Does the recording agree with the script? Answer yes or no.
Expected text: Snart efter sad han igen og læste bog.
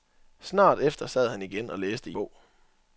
yes